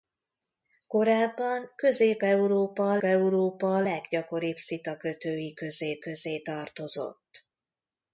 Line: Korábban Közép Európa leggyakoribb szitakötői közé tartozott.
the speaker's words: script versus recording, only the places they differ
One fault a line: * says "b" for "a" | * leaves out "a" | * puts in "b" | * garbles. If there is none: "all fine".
* puts in "Európa"
* puts in "közé"